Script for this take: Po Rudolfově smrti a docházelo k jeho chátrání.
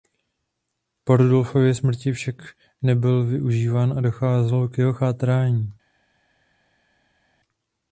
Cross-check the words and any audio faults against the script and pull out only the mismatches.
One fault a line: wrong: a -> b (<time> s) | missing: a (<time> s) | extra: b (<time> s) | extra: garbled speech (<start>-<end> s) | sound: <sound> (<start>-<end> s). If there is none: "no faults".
extra: však nebyl využíván (2.1 s)